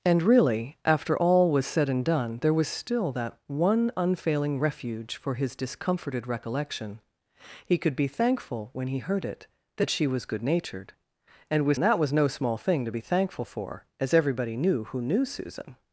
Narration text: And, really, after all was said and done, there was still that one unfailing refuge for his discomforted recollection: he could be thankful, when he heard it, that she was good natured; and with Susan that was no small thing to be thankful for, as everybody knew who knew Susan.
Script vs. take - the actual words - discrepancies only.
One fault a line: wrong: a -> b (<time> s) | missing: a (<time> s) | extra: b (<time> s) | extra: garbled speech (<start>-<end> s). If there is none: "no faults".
missing: Susan (11.8 s)